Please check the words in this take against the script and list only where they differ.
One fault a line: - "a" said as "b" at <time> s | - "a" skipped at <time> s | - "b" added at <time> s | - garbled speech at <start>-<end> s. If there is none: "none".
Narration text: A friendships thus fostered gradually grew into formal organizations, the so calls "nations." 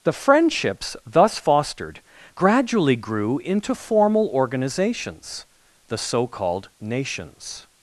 - "A" said as "The" at 0.0 s
- "calls" said as "called" at 6.3 s